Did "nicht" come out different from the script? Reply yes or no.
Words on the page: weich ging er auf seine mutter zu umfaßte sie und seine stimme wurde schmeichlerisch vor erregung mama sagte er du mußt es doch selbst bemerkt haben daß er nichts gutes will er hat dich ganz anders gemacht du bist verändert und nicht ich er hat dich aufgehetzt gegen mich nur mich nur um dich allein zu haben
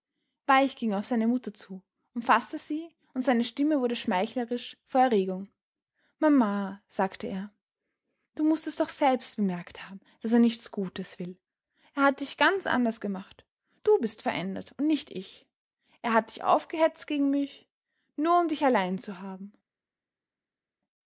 no